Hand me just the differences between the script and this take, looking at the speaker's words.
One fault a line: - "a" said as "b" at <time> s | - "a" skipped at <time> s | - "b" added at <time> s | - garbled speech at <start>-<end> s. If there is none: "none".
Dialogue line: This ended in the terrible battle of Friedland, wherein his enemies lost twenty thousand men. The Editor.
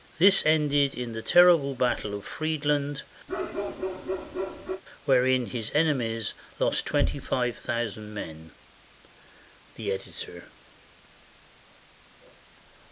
- "five" added at 7.2 s